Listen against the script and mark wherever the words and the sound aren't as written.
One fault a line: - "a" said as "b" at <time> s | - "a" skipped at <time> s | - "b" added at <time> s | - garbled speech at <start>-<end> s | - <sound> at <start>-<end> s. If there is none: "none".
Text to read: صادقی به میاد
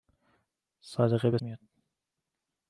none